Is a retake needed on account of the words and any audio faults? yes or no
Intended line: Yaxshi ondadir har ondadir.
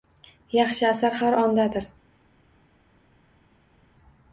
yes